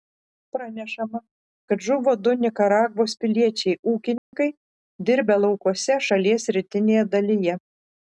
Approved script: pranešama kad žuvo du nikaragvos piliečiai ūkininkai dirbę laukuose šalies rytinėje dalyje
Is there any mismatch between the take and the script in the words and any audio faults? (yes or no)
yes